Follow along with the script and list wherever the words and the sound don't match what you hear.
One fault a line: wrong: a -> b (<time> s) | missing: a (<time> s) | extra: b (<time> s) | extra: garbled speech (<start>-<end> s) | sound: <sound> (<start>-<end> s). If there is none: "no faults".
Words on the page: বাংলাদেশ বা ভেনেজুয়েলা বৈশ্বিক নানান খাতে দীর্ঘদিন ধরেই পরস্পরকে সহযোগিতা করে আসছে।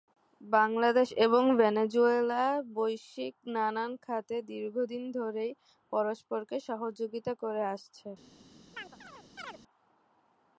wrong: বা -> এবং (1.2 s)
sound: chirp (8.7-9.6 s)